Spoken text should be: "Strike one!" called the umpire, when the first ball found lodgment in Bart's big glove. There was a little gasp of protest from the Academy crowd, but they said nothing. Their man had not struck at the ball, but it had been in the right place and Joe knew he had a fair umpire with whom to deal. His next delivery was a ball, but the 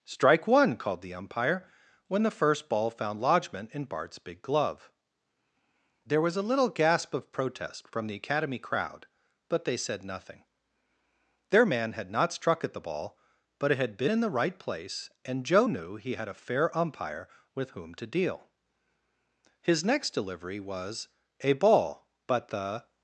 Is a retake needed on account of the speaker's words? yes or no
no